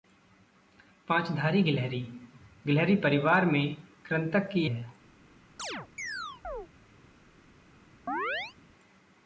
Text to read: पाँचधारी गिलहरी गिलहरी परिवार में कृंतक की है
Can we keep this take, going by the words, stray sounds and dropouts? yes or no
no